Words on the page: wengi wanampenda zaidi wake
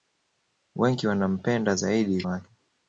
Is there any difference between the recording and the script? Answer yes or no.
no